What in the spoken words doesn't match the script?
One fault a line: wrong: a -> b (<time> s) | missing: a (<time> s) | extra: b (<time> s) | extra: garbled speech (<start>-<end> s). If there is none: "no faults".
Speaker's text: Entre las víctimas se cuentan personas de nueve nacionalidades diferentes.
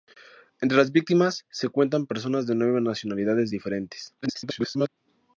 extra: garbled speech (4.2-4.9 s)